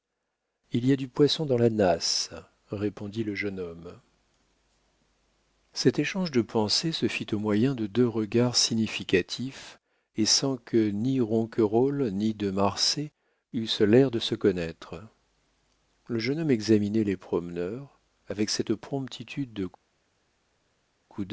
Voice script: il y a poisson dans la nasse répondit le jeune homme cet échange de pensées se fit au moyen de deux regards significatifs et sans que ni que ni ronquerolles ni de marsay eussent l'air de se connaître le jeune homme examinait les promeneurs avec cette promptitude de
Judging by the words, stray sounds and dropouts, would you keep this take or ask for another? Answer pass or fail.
fail